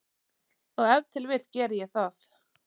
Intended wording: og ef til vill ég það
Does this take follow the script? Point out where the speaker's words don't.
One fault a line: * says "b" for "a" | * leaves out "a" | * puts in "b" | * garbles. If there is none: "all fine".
* puts in "geri"